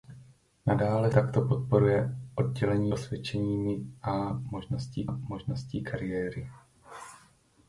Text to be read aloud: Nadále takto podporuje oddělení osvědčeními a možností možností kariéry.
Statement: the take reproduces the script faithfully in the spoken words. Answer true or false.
true